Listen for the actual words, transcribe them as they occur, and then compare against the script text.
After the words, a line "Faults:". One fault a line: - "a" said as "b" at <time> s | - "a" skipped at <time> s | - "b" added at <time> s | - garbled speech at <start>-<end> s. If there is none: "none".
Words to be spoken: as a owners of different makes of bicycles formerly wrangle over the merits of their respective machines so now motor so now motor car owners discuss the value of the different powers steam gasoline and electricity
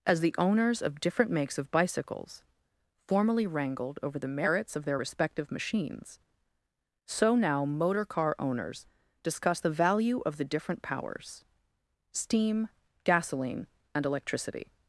as the owners of different makes of bicycles formerly wrangled over the merits of their respective machines so now motor car owners discuss the value of the different powers steam gasoline and electricity
Faults:
- "a" said as "the" at 0.2 s
- "wrangle" said as "wrangled" at 3.5 s
- "so now motor" skipped at 8.0 s